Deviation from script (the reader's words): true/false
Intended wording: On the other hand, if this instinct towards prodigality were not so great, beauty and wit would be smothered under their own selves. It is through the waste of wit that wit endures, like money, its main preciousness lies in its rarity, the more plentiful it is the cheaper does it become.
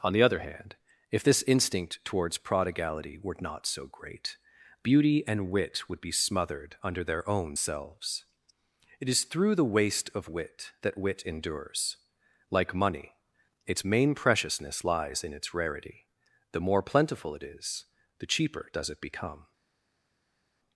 false